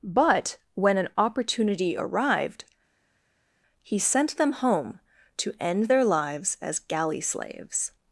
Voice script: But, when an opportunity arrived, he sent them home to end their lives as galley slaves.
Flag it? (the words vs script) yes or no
no